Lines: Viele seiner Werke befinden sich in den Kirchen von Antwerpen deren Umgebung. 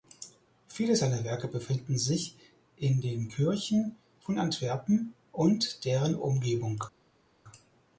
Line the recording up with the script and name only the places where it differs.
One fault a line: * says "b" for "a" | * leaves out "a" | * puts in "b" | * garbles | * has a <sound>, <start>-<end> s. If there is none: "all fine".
* puts in "und"